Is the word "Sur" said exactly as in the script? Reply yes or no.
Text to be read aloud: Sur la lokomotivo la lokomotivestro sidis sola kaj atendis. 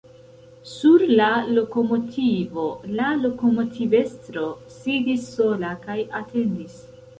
yes